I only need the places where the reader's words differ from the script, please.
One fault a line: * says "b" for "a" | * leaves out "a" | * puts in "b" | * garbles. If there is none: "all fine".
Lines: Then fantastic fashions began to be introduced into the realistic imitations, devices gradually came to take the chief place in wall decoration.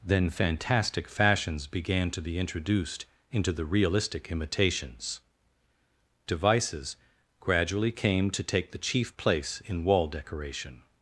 all fine